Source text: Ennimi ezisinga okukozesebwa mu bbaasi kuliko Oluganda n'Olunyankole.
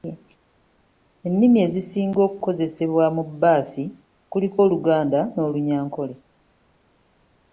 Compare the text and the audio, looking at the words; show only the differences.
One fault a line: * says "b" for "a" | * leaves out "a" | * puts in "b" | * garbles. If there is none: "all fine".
all fine